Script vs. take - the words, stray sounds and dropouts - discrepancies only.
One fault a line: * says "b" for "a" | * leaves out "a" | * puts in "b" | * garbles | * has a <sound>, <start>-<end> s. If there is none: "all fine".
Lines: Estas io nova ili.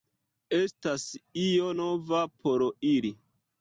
* puts in "por"